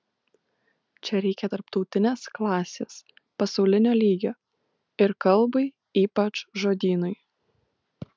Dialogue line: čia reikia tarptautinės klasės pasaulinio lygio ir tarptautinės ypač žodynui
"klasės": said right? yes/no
yes